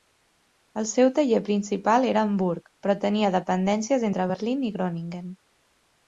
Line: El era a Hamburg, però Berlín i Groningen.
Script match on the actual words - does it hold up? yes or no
no